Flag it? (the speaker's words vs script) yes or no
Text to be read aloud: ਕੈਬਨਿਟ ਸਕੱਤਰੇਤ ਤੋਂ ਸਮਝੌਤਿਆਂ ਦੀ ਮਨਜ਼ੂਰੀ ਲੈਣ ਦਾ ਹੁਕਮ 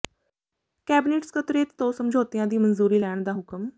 no